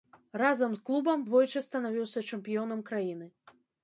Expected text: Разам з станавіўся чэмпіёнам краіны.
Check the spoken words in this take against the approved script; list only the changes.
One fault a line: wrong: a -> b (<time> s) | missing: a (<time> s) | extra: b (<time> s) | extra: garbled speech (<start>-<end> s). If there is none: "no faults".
extra: клубам двойчы (0.9 s)